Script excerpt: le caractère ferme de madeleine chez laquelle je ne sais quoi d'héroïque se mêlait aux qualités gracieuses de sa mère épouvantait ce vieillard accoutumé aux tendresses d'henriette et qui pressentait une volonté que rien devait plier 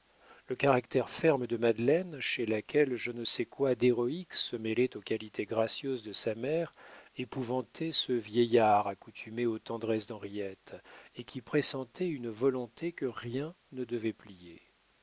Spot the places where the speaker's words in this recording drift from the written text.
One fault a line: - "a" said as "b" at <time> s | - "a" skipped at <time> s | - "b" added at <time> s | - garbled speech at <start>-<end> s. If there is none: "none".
- "ne" added at 13.7 s